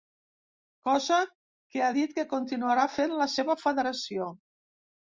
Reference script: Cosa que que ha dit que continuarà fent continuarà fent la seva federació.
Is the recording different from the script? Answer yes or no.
yes